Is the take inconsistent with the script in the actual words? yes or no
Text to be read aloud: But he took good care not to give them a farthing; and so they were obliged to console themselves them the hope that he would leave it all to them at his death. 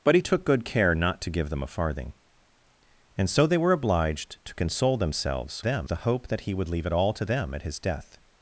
no